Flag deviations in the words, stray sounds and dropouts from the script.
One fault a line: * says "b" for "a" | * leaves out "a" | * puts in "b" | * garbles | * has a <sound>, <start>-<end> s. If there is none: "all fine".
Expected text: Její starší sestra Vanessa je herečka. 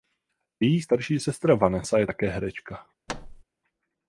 * puts in "také"
* has a thud, 3.1-3.4 s